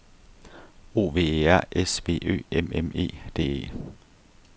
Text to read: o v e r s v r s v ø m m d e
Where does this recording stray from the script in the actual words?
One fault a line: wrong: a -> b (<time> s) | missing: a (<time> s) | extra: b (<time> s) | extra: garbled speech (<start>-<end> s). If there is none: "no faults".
missing: r s v (2.2 s)
extra: e (3.0 s)